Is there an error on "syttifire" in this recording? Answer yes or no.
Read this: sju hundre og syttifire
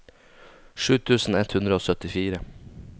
no